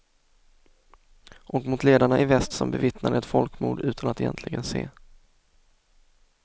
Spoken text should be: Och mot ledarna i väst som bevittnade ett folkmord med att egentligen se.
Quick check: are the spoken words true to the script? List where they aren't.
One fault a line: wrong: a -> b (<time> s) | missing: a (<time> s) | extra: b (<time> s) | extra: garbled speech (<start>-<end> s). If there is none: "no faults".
wrong: med -> utan (3.8 s)